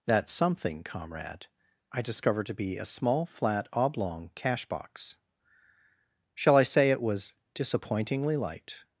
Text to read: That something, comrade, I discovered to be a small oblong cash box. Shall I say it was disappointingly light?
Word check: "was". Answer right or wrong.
right